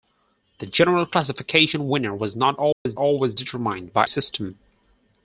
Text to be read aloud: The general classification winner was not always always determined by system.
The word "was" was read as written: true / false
true